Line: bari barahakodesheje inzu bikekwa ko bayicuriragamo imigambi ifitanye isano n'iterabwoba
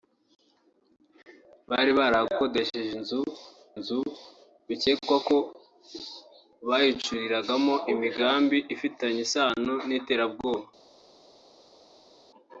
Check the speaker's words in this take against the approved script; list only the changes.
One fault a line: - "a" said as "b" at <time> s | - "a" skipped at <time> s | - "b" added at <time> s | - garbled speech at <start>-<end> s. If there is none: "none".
- "inzu" added at 3.8 s